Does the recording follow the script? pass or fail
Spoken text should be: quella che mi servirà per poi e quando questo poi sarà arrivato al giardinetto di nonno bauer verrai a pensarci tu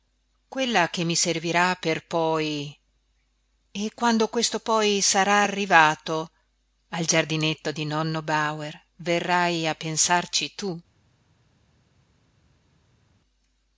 pass